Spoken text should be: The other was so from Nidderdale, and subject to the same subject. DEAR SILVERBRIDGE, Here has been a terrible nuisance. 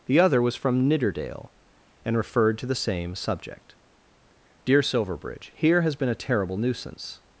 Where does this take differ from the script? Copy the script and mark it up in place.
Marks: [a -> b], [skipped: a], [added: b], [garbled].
The other was [skipped: so] from Nidderdale, and [subject -> referred] to the same subject. DEAR SILVERBRIDGE, Here has been a terrible nuisance.